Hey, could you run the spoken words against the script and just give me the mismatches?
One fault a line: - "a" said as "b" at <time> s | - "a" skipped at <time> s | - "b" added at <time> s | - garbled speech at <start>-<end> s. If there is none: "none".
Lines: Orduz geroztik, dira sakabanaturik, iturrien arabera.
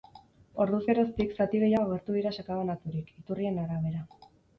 - "zati gehiago agertu" added at 1.4 s